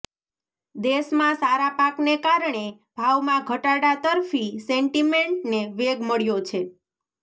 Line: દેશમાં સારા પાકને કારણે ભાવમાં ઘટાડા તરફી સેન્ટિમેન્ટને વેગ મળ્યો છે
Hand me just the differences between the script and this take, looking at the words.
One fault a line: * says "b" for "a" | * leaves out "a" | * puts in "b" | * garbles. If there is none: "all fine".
all fine